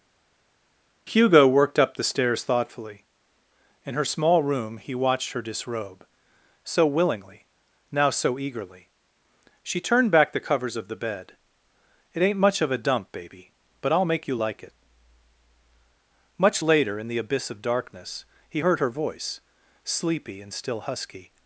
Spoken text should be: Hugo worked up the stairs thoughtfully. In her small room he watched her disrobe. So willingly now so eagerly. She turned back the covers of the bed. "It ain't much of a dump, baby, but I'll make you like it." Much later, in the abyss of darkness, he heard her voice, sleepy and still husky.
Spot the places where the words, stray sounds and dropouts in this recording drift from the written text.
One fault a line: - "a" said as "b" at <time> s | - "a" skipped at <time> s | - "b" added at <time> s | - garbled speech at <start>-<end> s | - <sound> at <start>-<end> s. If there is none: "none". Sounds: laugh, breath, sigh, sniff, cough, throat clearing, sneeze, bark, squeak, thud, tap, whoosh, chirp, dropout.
none